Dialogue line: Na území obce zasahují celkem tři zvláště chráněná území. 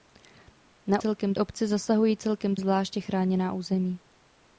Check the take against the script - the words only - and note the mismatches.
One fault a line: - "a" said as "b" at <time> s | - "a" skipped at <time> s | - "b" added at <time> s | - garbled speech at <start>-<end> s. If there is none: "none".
- "území" said as "celkem" at 0.9 s
- "tři" skipped at 2.6 s